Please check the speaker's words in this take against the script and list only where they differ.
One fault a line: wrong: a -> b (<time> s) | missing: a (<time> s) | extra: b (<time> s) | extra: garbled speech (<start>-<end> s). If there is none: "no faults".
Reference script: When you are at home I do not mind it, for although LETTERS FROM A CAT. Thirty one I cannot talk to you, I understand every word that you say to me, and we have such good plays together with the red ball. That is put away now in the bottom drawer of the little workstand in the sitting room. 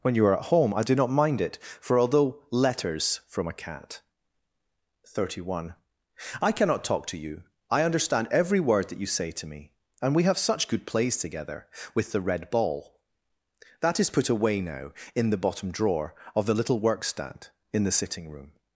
no faults